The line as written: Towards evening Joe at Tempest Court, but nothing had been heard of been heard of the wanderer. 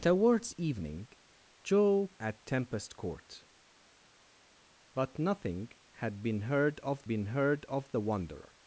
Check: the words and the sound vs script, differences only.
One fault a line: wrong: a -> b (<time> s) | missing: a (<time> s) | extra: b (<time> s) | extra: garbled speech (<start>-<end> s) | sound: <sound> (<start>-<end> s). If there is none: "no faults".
no faults